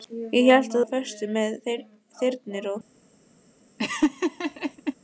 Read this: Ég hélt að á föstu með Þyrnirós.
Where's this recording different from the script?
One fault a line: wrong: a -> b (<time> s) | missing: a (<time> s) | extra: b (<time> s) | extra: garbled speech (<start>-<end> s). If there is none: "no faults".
no faults